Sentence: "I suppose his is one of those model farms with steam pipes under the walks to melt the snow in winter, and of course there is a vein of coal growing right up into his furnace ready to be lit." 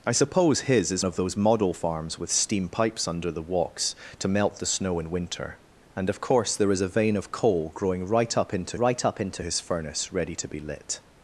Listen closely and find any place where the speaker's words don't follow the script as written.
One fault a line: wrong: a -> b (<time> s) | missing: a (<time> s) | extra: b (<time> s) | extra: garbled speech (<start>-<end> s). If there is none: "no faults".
missing: one (1.1 s)
extra: right up into (8.8 s)